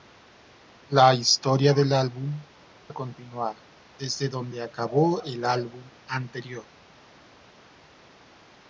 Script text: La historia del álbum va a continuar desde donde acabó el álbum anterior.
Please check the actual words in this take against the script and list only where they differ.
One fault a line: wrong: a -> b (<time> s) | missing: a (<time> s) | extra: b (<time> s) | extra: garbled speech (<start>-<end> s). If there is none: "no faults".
missing: va (2.4 s)